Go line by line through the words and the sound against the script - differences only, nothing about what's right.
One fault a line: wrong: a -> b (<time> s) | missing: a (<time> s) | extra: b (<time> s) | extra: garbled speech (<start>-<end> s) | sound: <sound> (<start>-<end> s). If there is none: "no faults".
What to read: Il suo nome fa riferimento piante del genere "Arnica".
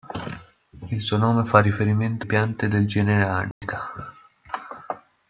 sound: dropout (3.5-3.6 s)